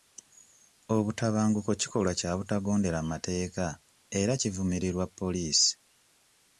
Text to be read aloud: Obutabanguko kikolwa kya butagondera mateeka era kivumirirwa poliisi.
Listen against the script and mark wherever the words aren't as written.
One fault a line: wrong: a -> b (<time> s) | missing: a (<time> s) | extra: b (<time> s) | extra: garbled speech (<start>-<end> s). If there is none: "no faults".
no faults